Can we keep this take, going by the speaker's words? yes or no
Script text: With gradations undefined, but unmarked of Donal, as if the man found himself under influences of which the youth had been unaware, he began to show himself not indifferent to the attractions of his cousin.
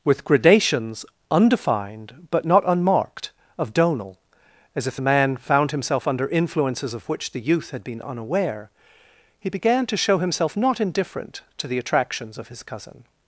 no